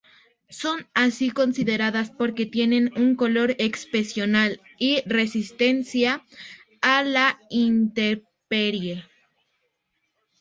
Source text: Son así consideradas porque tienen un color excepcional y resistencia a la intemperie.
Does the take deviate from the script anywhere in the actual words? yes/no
no